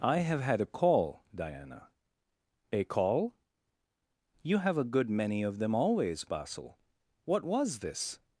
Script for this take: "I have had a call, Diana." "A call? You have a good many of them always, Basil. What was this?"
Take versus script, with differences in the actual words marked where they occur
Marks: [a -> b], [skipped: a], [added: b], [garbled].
"I have had a call, Diana." "A call? You have a good many of them always, Basil. What was this?"